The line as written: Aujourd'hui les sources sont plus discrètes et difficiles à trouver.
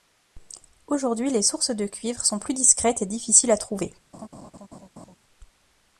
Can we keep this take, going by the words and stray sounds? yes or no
no